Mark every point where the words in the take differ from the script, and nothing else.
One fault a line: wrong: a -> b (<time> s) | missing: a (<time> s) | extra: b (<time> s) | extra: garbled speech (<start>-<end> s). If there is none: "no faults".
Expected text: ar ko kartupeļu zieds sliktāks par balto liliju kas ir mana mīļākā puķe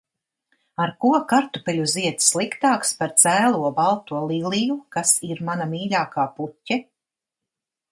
extra: cēlo (3.2 s)